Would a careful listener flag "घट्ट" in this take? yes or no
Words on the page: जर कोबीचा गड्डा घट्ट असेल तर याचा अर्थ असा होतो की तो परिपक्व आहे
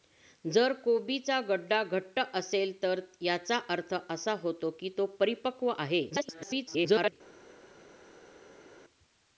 no